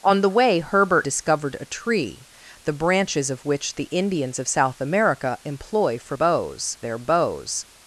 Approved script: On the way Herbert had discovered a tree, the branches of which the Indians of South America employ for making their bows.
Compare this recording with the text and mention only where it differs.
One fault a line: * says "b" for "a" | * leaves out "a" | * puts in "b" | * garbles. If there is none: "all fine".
* leaves out "had"
* says "bows" for "making"